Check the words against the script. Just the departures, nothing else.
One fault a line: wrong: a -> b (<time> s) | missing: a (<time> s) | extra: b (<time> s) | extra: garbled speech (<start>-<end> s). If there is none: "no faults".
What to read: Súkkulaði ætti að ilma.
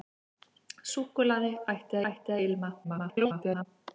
extra: ætti (2.1 s)
extra: garbled speech (2.8-3.7 s)